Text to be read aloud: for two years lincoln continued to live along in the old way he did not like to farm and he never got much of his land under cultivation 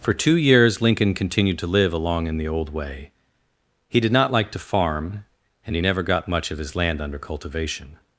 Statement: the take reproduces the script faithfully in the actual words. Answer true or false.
true